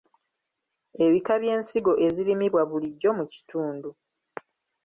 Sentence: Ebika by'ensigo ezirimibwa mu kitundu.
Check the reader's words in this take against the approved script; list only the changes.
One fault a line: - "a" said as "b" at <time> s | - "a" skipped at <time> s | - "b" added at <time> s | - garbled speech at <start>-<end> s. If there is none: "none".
- "bulijjo" added at 2.7 s